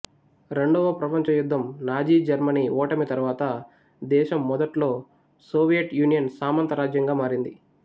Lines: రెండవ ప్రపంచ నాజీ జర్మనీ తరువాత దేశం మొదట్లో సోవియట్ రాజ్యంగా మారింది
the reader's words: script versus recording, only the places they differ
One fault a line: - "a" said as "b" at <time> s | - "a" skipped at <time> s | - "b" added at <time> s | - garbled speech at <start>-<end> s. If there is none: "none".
- "యుద్ధం" added at 1.3 s
- "ఓటమి" added at 2.8 s
- "యూనియన్ సామంత" added at 6.0 s